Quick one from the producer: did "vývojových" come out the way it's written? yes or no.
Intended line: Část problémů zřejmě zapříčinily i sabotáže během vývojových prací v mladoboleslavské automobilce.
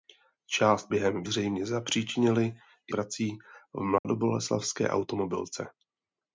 no